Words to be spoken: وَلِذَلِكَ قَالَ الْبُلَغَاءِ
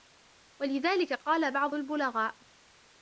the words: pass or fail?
fail